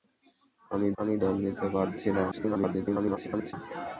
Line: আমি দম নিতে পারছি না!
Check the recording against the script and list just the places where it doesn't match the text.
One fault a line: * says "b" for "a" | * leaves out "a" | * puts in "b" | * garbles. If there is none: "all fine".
* puts in "আমি"
* garbles